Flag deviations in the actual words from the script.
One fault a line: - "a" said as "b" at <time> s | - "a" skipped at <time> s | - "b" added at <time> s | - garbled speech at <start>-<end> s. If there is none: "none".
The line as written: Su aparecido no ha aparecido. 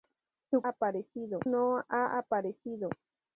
none